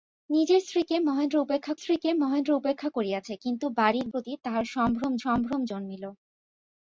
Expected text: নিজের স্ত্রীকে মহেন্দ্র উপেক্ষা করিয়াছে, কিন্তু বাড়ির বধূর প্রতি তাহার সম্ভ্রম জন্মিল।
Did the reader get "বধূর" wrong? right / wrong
wrong